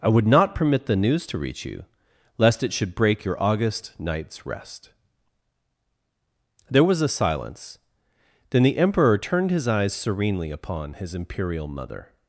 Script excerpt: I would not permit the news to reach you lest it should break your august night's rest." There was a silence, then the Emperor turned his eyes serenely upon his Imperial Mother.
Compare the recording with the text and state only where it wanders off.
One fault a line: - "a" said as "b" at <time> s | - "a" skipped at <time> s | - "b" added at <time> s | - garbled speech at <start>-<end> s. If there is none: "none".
none